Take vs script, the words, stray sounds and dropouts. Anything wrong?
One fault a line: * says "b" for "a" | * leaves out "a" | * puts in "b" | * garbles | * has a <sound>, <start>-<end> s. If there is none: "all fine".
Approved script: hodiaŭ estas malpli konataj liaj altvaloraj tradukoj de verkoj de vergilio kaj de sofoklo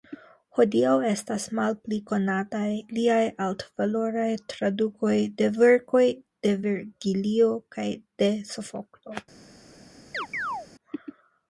* has a chirp, 10.1-10.7 s